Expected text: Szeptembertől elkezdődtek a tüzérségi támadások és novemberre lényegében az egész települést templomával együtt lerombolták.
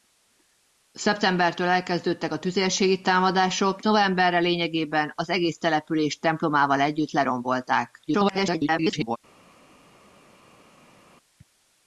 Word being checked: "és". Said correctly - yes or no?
no